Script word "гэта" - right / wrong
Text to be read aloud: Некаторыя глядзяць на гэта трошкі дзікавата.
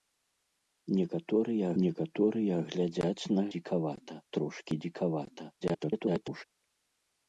wrong